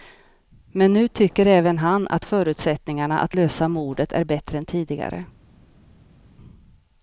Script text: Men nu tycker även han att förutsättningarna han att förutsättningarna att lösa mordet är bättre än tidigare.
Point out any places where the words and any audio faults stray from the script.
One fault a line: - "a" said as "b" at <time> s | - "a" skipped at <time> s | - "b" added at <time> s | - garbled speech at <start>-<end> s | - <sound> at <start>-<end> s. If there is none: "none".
- "han att förutsättningarna" skipped at 3.2 s